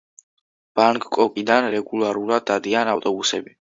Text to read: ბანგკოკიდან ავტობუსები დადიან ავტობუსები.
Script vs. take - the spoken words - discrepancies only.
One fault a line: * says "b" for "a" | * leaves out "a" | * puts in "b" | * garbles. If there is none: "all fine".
* says "რეგულარულად" for "ავტობუსები"